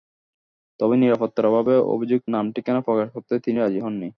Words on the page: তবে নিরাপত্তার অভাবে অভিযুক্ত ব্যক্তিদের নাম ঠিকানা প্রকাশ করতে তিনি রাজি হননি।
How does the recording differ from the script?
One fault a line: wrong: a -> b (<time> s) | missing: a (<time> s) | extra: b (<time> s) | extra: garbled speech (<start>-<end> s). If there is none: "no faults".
missing: ব্যক্তিদের (2.3 s)